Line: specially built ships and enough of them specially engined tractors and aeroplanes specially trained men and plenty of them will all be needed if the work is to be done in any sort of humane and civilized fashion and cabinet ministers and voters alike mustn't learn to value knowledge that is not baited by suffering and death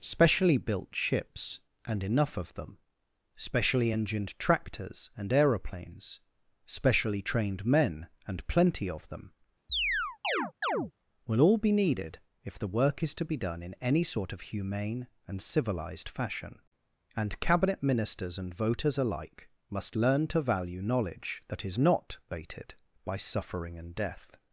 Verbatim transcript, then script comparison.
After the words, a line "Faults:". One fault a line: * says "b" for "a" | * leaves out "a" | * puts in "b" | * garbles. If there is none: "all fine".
specially built ships and enough of them specially engined tractors and aeroplanes specially trained men and plenty of them will all be needed if the work is to be done in any sort of humane and civilized fashion and cabinet ministers and voters alike must learn to value knowledge that is not baited by suffering and death
Faults:
* says "must" for "mustn't"